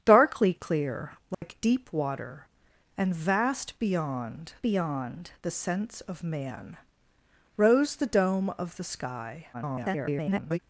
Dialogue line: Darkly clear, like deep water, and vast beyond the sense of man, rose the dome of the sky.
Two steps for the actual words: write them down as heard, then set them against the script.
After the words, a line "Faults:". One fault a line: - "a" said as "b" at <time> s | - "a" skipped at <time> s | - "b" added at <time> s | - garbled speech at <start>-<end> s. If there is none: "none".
Darkly clear, like deep water, and vast beyond beyond the sense of man, rose the dome of the sky. [garbled]
Faults:
- "beyond" added at 4.6 s
- garbled speech at 9.5-10.6 s